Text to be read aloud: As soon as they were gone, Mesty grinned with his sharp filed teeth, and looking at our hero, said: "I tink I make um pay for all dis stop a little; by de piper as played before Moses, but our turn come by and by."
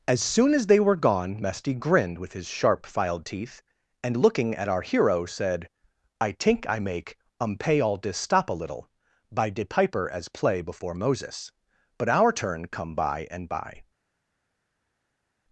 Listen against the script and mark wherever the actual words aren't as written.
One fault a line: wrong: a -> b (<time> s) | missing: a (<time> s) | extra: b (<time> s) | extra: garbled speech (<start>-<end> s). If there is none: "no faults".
missing: for (7.8 s)
wrong: played -> play (10.3 s)